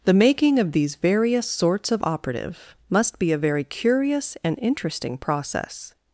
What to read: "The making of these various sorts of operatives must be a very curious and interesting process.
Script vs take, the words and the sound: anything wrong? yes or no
yes